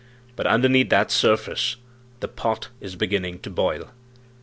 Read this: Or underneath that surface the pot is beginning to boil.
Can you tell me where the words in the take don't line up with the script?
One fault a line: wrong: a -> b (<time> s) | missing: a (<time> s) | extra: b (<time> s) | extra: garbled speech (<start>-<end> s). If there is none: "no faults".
wrong: Or -> But (0.3 s)